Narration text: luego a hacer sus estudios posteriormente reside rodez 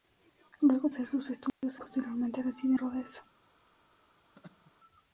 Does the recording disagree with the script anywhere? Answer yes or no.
no